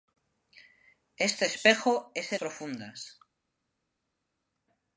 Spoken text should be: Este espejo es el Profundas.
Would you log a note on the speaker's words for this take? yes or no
no